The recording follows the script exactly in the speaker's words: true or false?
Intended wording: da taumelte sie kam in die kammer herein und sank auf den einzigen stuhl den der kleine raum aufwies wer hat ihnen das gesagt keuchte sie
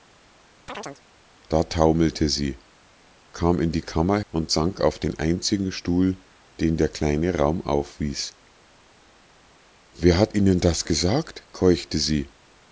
false